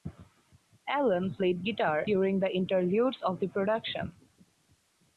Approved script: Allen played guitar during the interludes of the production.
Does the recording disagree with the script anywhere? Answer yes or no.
no